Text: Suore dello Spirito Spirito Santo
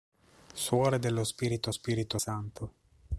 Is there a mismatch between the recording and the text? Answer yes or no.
no